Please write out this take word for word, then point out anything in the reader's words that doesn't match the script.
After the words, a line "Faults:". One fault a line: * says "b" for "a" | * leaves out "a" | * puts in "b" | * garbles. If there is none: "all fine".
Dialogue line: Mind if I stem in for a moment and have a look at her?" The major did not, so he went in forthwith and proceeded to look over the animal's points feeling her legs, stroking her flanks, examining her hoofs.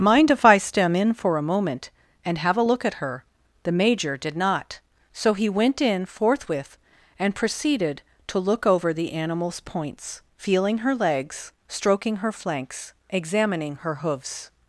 Mind if I stem in for a moment and have a look at her?" The major did not, so he went in forthwith and proceeded to look over the animal's points feeling her legs, stroking her flanks, examining her hoofs.
Faults:
all fine